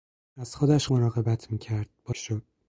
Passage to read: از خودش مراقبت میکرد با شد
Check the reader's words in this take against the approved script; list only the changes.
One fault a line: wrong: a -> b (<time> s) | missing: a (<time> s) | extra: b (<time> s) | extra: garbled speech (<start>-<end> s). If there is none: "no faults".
no faults